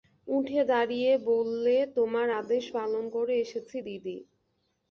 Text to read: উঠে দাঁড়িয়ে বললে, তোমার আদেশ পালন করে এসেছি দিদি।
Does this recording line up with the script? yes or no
yes